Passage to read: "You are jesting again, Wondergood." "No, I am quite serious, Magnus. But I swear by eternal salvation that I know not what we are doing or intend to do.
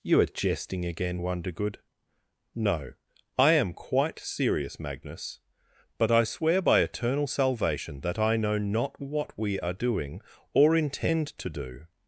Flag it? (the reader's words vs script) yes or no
no